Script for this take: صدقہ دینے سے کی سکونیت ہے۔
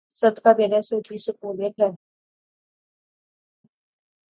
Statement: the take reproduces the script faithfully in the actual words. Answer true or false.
true